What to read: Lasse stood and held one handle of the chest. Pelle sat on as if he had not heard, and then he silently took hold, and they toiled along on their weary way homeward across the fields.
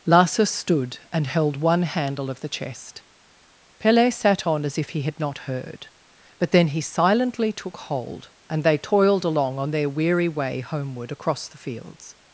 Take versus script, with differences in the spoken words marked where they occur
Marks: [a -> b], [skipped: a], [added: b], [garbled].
Lasse stood and held one handle of the chest. Pelle sat on as if he had not heard, [and -> but] then he silently took hold, and they toiled along on their weary way homeward across the fields.